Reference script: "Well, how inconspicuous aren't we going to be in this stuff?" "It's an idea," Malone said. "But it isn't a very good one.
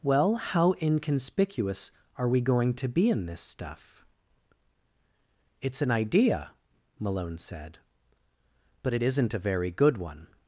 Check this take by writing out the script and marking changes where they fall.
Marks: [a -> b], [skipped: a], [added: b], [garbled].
"Well, how inconspicuous [aren't -> are] we going to be in this stuff?" "It's an idea," Malone said. "But it isn't a very good one.